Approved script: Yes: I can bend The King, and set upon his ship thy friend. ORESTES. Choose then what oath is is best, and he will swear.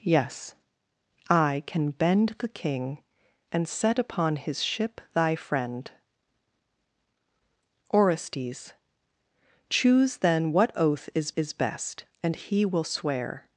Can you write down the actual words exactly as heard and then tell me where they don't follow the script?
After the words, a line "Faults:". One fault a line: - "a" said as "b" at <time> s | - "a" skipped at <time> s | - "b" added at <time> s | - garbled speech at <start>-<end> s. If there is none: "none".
Yes: I can bend The King, and set upon his ship thy friend. ORESTES. Choose then what oath is is best, and he will swear.
Faults:
none